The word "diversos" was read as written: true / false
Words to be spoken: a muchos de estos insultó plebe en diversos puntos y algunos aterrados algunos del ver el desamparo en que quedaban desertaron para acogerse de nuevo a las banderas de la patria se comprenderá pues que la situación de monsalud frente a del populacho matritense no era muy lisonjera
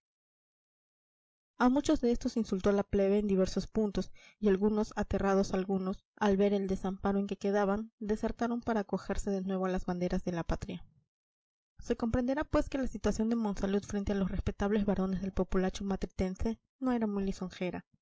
true